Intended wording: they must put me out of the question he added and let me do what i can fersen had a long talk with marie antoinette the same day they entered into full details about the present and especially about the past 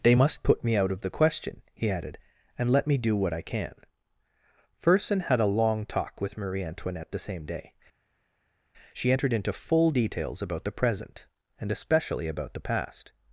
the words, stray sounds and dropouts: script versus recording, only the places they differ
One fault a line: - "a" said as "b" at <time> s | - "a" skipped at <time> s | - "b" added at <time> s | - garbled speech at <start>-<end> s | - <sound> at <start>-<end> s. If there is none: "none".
- "they" said as "she" at 8.9 s